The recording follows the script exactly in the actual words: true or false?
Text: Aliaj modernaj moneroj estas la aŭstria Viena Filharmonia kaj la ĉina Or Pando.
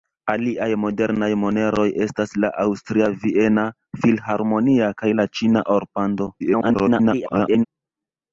false